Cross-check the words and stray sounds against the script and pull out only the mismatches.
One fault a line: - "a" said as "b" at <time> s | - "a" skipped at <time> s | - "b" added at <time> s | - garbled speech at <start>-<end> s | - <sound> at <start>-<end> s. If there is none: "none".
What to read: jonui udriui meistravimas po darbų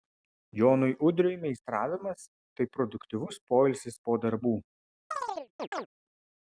- "tai produktyvus poilsis" added at 2.6 s
- chirp at 5.1-5.9 s